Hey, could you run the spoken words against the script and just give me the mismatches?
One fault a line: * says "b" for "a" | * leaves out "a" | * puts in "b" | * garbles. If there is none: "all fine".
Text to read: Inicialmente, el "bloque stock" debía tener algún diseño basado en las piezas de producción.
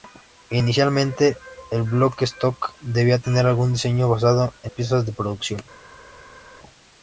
* leaves out "las"